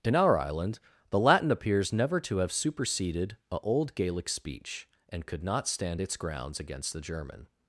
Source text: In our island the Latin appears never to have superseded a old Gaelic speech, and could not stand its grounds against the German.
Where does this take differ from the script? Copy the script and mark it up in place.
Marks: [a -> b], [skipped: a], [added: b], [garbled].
In our island the Latin appears never to have superseded a old Gaelic speech, and could not stand its grounds against the German.